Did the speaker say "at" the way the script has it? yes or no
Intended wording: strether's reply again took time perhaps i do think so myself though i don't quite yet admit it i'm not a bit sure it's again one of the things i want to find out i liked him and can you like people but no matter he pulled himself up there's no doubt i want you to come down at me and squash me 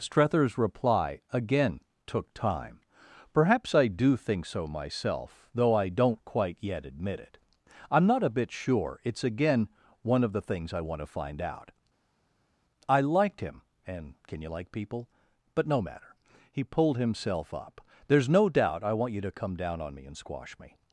no